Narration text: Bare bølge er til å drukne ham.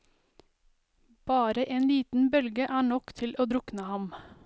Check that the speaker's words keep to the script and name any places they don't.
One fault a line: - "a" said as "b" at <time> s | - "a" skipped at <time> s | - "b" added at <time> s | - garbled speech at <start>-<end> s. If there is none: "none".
- "en liten" added at 1.8 s
- "nok" added at 2.9 s